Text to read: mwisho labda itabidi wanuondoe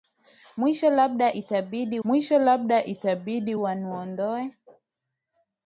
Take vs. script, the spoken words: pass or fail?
fail